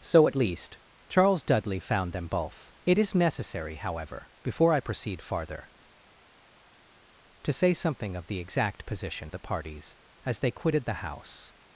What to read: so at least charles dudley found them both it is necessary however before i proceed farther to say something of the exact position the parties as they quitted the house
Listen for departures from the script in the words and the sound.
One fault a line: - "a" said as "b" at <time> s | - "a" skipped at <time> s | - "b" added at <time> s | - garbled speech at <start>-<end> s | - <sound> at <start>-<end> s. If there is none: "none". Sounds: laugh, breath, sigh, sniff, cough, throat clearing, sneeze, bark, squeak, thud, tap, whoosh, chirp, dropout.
none